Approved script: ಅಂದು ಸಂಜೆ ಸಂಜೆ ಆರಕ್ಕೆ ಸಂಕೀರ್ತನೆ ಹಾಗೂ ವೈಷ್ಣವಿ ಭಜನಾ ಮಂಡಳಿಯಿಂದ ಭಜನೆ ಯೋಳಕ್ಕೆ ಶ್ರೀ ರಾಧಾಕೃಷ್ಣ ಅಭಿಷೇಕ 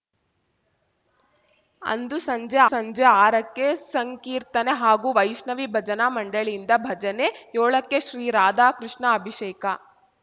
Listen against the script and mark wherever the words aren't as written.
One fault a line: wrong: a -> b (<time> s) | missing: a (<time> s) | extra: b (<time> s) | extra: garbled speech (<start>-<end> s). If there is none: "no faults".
no faults